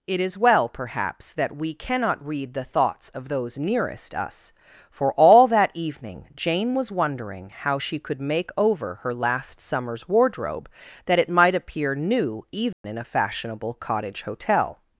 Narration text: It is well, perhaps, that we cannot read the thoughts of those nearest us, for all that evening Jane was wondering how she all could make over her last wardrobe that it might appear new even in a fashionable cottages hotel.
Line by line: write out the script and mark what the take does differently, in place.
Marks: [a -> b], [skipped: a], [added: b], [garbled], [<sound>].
It is well, perhaps, that we cannot read the thoughts of those nearest us, for all that evening Jane was wondering how she [skipped: all] could make over her last [added: summer's] wardrobe that it might appear new even [dropout] in a fashionable [cottages -> cottage] hotel.